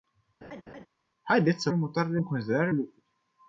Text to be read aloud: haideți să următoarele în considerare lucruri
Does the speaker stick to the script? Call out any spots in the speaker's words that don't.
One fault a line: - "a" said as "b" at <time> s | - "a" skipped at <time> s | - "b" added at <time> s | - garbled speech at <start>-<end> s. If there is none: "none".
none